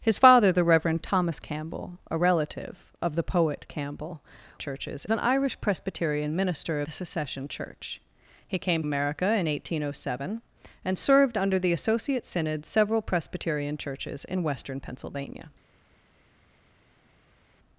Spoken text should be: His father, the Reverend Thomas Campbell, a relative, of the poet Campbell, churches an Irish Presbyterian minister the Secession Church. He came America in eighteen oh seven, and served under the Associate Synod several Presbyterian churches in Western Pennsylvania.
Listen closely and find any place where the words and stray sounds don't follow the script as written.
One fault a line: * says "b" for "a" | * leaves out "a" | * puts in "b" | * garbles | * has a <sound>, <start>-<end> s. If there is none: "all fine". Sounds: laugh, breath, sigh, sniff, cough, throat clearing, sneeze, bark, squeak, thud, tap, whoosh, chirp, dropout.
all fine